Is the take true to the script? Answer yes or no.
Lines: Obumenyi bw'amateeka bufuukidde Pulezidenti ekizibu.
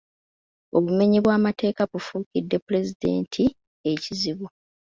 yes